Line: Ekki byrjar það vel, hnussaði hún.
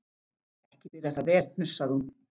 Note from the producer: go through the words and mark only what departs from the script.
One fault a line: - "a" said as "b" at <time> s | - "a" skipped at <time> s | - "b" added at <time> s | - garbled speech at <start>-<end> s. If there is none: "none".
none